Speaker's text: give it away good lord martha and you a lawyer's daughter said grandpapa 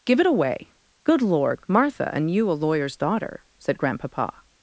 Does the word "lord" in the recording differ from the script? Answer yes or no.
no